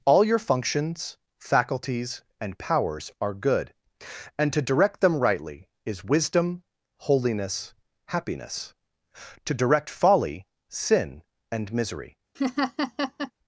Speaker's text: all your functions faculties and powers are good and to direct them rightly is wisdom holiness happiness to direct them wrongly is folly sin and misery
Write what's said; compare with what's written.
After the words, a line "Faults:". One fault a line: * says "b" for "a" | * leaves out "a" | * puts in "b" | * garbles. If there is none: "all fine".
all your functions faculties and powers are good and to direct them rightly is wisdom holiness happiness to direct folly sin and misery
Faults:
* leaves out "them wrongly is"